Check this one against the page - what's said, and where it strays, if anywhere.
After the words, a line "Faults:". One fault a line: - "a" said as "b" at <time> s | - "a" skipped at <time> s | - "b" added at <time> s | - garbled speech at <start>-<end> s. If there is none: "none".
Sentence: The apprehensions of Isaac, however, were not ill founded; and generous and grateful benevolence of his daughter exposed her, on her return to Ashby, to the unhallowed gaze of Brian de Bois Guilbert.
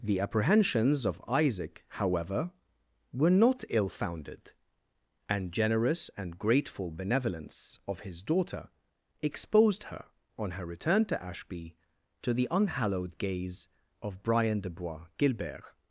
The apprehensions of Isaac, however, were not ill founded; and generous and grateful benevolence of his daughter exposed her, on her return to Ashby, to the unhallowed gaze of Brian de Bois Guilbert.
Faults:
none